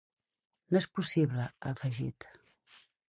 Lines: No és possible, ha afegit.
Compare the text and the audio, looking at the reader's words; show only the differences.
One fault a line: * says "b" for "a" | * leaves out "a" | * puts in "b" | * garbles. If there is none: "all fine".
all fine